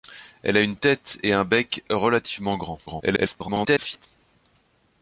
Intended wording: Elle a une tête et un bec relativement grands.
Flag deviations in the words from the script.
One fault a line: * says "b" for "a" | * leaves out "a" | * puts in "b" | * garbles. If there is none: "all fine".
* garbles